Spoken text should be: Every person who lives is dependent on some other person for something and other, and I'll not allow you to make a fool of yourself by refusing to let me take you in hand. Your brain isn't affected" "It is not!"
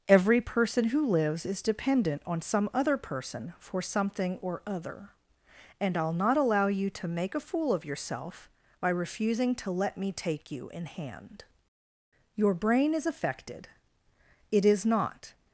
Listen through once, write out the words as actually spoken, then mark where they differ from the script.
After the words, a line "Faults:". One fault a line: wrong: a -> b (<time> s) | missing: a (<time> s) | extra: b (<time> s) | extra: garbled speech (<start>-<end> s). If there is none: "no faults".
Every person who lives is dependent on some other person for something or other, and I'll not allow you to make a fool of yourself by refusing to let me take you in hand. Your brain is affected" "It is not!"
Faults:
wrong: and -> or (4.4 s)
wrong: isn't -> is (12.9 s)